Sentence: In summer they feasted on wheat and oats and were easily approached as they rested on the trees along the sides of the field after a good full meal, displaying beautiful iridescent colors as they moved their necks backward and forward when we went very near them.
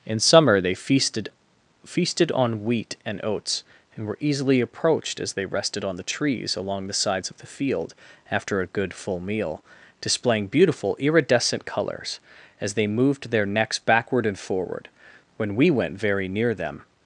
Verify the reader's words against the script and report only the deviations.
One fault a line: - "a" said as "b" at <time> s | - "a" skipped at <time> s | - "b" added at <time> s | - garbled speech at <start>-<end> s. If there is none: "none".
- "feasted" added at 1.9 s